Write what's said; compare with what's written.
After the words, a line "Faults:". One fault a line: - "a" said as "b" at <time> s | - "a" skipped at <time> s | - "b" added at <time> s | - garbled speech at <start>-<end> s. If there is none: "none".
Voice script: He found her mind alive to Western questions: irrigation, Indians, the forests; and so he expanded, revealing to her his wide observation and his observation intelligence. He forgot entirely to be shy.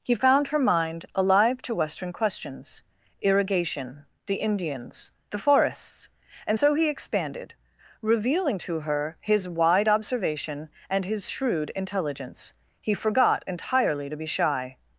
He found her mind alive to Western questions: irrigation, the Indians, the forests; and so he expanded, revealing to her his wide observation and his shrewd intelligence. He forgot entirely to be shy.
Faults:
- "the" added at 4.2 s
- "observation" said as "shrewd" at 11.3 s